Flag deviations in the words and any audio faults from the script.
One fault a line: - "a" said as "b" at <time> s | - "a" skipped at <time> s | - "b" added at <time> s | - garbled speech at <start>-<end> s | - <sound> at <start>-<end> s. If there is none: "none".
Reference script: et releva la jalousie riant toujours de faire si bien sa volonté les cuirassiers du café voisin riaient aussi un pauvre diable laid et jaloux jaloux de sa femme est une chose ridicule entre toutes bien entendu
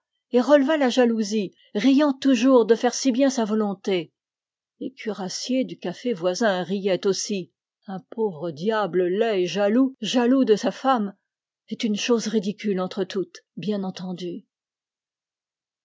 none